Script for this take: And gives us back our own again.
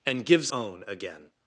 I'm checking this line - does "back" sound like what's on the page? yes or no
no